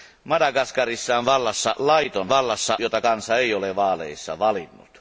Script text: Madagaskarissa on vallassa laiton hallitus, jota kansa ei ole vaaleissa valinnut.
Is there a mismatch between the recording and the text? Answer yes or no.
yes